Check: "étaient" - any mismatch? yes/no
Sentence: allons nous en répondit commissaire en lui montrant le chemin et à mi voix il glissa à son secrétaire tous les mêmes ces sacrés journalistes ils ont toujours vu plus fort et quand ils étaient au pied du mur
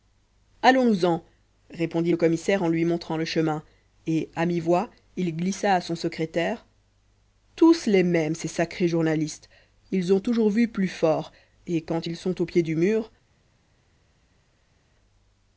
yes